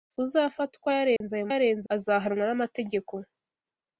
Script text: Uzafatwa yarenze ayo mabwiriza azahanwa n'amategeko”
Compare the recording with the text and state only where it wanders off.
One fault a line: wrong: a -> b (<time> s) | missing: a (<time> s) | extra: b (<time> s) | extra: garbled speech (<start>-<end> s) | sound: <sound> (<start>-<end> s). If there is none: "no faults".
sound: dropout (1.2-1.2 s)
wrong: mabwiriza -> yarenze (1.5 s)